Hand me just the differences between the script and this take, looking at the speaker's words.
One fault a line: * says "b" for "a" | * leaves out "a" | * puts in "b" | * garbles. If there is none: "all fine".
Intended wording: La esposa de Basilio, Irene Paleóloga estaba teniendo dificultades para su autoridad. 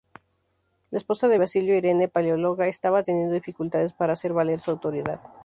* puts in "hacer valer"